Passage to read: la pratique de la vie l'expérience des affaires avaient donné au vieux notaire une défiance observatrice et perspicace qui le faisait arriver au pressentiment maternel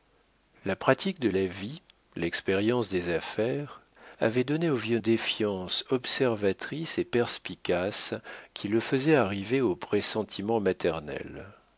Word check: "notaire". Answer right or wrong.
wrong